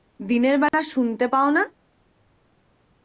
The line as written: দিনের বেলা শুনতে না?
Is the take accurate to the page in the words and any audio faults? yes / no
no